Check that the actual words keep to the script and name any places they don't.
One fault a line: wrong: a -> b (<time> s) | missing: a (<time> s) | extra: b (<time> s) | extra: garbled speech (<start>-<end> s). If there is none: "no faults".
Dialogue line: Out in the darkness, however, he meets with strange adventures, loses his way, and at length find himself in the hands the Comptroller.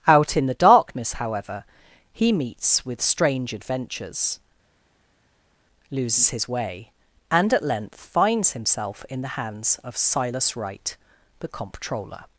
wrong: find -> finds (8.0 s)
extra: of Silas Wright (9.8 s)